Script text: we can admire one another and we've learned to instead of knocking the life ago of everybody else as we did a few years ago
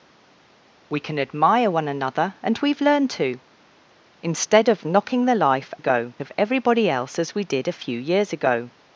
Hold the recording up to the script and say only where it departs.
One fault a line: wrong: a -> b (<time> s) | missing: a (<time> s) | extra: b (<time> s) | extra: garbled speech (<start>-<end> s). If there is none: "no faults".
no faults